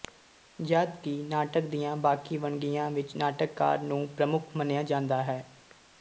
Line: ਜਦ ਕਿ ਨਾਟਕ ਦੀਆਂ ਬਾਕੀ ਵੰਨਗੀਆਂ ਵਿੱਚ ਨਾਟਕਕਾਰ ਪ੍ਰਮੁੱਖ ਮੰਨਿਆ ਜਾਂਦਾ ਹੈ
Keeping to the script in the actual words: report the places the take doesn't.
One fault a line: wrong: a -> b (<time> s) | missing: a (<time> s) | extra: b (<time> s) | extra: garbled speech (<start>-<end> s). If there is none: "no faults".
extra: ਨੂੰ (3.8 s)